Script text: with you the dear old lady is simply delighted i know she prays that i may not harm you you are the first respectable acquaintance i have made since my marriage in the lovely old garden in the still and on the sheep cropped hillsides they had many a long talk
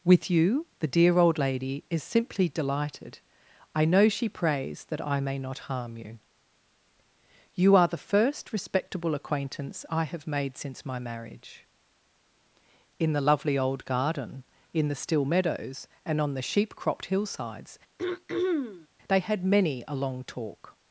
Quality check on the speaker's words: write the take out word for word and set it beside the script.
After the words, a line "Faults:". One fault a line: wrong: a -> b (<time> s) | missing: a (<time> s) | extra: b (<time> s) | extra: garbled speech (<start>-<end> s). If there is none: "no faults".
with you the dear old lady is simply delighted i know she prays that i may not harm you you are the first respectable acquaintance i have made since my marriage in the lovely old garden in the still meadows and on the sheep cropped hillsides they had many a long talk
Faults:
extra: meadows (15.3 s)